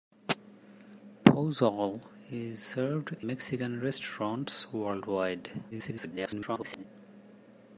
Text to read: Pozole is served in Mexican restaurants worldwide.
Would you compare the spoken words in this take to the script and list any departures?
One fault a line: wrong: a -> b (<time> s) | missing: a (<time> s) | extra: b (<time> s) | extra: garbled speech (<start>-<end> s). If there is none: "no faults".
missing: in (3.1 s)
extra: garbled speech (5.7-6.8 s)